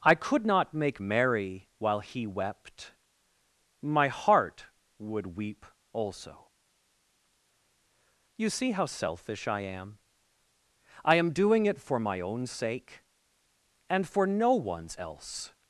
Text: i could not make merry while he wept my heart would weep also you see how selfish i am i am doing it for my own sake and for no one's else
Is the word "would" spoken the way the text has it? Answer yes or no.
yes